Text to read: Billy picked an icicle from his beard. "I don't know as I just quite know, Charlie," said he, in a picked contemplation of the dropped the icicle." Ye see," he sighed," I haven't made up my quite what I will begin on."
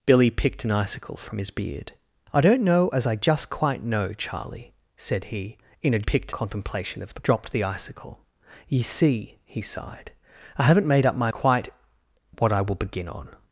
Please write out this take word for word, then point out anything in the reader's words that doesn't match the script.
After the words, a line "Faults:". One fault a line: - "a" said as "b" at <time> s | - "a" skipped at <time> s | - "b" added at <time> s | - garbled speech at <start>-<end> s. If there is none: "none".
Billy picked an icicle from his beard. "I don't know as I just quite know, Charlie," said he, in a picked contemplation of the dropped the icicle." Ye see," he sighed," I haven't made up my quite what I will begin on."
Faults:
none